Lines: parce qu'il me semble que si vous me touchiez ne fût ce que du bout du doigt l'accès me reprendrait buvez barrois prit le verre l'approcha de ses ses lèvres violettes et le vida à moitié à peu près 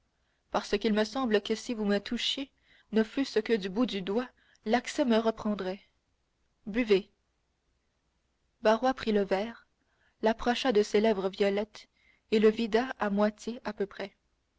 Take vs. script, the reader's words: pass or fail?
fail